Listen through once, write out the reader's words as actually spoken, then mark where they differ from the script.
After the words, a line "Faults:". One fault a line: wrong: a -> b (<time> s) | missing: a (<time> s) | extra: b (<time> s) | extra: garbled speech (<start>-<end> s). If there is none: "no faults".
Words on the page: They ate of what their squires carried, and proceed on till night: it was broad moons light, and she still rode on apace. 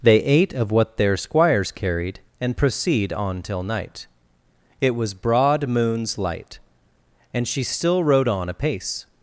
They ate of what their squires carried, and proceed on till night: it was broad moons light, and she still rode on apace.
Faults:
no faults